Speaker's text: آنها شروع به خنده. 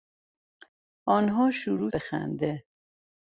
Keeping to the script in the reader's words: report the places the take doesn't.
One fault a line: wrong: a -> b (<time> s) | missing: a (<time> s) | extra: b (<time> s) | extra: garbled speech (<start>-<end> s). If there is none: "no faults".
no faults